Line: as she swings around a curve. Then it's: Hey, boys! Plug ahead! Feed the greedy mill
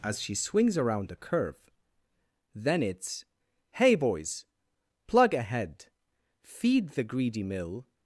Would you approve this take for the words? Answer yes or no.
yes